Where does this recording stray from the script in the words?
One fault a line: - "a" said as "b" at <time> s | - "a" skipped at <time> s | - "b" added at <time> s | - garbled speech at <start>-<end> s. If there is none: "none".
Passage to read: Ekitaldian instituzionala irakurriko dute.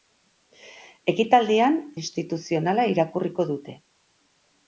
none